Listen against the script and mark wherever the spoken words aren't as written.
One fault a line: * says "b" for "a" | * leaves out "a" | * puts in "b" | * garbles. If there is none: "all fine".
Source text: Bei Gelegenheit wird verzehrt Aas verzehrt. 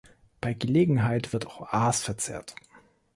* says "auch" for "verzehrt"